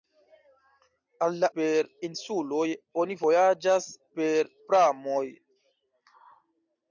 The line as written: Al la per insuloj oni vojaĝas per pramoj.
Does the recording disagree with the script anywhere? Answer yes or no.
no